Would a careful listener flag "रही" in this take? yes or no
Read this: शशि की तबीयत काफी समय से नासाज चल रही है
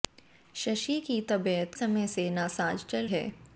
yes